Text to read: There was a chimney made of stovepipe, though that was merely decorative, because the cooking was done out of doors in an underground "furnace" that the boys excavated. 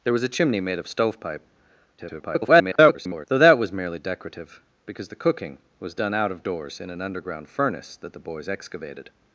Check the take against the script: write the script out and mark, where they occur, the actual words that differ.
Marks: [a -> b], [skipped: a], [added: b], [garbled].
There was a chimney made of stovepipe, [garbled] though that was merely decorative, because the cooking was done out of doors in an underground "furnace" that the boys excavated.